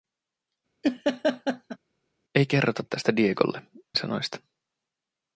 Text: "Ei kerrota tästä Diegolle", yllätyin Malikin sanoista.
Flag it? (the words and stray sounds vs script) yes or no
yes